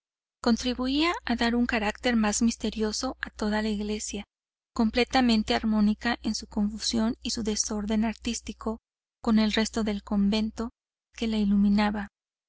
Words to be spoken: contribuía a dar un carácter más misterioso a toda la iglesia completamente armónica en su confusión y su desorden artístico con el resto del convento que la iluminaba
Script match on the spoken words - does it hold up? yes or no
yes